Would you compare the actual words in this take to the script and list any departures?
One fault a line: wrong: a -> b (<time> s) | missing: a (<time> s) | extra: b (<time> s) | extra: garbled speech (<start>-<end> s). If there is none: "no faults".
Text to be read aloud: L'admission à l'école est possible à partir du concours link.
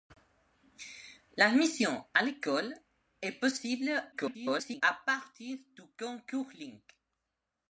extra: garbled speech (4.1-4.8 s)